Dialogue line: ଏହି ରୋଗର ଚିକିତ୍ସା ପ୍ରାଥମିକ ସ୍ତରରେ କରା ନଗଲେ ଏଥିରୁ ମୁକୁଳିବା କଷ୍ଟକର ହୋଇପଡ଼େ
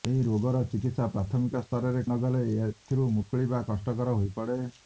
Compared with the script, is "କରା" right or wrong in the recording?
wrong